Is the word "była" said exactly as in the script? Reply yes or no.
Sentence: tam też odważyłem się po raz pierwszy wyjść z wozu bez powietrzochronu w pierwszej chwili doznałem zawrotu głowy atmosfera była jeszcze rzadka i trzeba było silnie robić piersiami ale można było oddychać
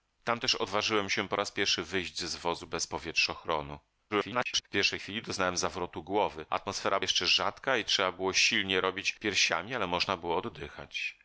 no